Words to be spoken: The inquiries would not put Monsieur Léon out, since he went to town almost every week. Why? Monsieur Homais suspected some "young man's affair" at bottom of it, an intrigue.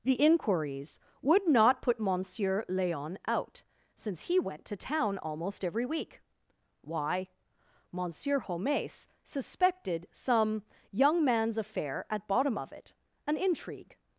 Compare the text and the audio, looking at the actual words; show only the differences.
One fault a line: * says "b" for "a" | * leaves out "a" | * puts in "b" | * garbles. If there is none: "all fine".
all fine